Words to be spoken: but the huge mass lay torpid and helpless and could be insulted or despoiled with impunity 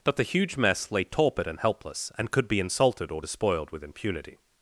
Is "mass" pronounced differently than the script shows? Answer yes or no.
yes